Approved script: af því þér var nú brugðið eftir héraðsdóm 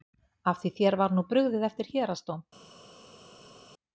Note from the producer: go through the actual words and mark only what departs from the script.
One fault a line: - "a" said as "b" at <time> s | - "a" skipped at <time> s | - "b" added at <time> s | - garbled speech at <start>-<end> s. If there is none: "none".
none